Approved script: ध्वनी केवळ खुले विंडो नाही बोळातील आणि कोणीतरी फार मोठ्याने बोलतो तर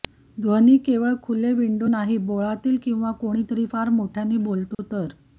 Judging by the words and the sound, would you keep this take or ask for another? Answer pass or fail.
fail